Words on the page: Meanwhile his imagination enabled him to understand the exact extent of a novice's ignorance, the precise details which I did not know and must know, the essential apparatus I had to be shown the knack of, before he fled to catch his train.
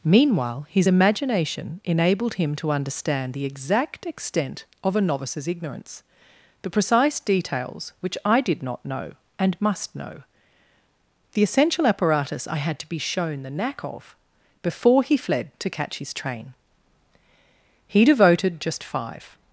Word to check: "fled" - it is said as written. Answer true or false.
true